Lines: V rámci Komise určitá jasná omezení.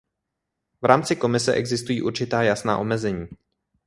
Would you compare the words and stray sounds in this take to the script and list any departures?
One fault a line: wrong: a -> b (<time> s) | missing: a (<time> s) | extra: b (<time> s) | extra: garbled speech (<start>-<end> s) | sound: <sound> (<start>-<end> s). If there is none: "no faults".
extra: existují (1.5 s)